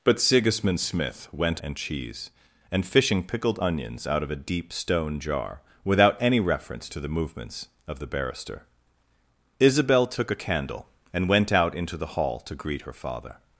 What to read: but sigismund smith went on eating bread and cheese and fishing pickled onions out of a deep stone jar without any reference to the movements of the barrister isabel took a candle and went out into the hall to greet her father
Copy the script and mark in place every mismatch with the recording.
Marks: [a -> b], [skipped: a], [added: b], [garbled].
but sigismund smith went [skipped: on eating bread] and cheese and fishing pickled onions out of a deep stone jar without any reference to the movements of the barrister isabel took a candle and went out into the hall to greet her father